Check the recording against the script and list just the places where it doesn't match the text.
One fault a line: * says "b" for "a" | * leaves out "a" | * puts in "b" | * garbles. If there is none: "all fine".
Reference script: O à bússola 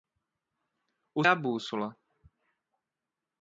all fine